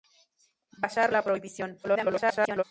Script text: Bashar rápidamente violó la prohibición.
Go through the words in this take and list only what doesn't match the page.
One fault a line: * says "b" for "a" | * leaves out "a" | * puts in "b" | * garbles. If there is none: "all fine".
* leaves out "rápidamente violó"
* garbles